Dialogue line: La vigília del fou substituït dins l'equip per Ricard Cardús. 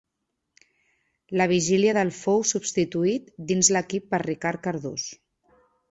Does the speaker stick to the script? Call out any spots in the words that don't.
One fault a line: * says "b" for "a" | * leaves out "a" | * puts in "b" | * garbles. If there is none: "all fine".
all fine